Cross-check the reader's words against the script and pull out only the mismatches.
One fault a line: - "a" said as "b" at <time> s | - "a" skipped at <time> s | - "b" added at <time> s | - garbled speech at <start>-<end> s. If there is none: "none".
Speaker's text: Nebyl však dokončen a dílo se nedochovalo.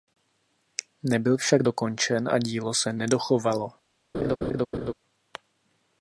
none